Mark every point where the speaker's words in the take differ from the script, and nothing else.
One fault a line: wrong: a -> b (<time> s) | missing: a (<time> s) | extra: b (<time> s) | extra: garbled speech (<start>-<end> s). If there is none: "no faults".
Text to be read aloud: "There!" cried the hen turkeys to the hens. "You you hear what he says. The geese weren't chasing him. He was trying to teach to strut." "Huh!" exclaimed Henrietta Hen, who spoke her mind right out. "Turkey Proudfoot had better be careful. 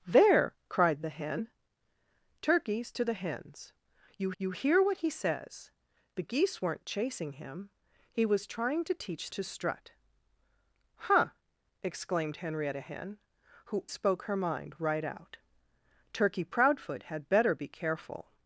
no faults